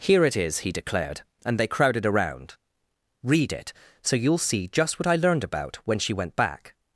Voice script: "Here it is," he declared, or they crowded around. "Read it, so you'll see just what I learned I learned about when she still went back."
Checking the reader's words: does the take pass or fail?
fail